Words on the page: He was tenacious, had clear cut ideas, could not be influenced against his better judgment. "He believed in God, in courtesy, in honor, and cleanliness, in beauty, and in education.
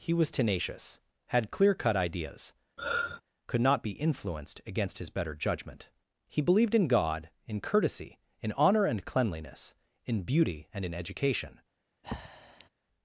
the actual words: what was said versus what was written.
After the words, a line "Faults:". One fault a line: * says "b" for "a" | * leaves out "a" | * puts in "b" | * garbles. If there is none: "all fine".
He was tenacious, had clear cut ideas, could not be influenced against his better judgment. "He believed in God, in courtesy, in honor, and cleanliness, in beauty, and in education.
Faults:
all fine